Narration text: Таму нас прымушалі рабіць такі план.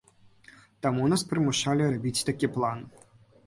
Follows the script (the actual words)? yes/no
yes